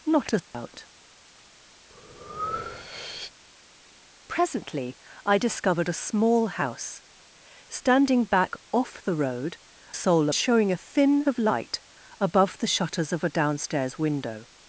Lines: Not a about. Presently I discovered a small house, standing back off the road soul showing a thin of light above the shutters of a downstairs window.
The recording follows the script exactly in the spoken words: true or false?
true